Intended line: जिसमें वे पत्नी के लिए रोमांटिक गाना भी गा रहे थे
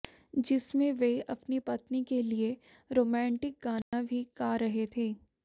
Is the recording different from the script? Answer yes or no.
yes